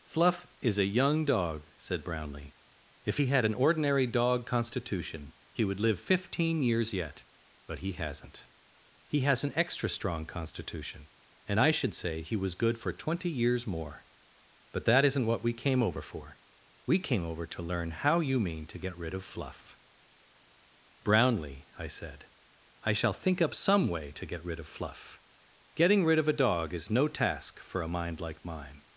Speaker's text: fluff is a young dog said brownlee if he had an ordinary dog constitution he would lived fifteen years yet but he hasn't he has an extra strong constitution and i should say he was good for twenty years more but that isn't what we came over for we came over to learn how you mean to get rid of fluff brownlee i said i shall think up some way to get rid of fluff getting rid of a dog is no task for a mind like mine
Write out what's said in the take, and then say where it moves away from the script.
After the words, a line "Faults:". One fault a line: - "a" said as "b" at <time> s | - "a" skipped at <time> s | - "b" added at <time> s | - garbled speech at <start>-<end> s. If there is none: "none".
fluff is a young dog said brownlee if he had an ordinary dog constitution he would live fifteen years yet but he hasn't he has an extra strong constitution and i should say he was good for twenty years more but that isn't what we came over for we came over to learn how you mean to get rid of fluff brownlee i said i shall think up some way to get rid of fluff getting rid of a dog is no task for a mind like mine
Faults:
- "lived" said as "live" at 5.8 s